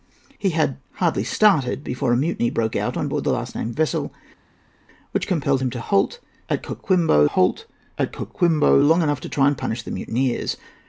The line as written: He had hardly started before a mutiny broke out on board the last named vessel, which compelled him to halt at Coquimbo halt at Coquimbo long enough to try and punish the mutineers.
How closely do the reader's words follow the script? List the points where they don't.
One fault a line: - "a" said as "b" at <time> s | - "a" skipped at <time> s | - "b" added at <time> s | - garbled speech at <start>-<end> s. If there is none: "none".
none